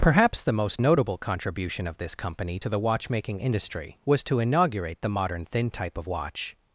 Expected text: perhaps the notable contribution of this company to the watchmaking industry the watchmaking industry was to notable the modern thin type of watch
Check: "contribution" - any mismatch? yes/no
no